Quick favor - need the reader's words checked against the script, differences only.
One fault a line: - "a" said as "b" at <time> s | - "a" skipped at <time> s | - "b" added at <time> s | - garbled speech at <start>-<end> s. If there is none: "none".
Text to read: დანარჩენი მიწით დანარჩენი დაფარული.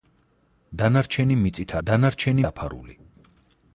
none